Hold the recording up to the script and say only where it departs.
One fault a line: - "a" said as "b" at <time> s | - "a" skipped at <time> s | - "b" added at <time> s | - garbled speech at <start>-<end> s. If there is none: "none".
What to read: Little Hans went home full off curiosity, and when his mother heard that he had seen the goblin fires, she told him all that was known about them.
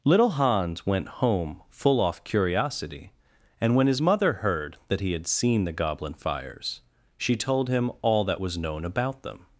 none